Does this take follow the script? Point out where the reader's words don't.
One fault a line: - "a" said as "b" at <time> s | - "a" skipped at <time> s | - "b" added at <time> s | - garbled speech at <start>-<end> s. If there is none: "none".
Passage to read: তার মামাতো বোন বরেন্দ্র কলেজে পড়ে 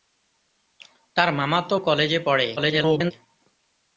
- "বোন বরেন্দ্র" skipped at 1.8 s
- garbled speech at 2.6-3.1 s